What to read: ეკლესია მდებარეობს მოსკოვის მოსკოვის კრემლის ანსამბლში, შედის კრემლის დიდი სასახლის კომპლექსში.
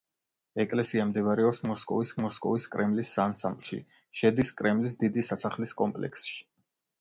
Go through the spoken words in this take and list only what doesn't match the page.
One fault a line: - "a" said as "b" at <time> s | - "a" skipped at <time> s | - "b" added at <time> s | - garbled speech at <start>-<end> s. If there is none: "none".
none